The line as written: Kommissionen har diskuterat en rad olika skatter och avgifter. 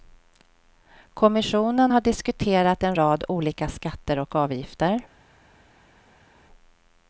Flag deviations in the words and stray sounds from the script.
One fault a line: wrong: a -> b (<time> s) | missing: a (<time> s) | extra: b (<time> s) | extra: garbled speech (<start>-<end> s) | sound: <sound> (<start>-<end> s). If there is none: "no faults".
no faults